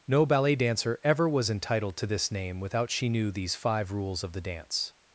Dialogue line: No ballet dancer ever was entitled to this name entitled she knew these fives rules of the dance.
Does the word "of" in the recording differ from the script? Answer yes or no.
no